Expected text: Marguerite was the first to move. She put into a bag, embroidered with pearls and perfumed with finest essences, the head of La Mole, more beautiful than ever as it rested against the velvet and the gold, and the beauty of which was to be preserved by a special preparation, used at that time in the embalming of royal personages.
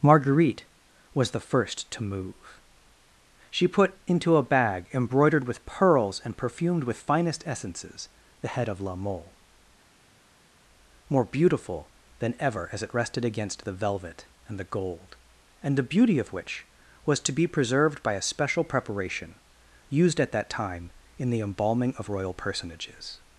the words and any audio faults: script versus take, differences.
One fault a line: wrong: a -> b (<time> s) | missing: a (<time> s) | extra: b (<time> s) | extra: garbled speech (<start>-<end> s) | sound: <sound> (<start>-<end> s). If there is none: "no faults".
no faults